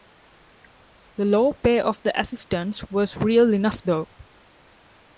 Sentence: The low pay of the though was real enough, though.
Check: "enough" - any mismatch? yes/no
no